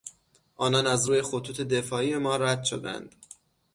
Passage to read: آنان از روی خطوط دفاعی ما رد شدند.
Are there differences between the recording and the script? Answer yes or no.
no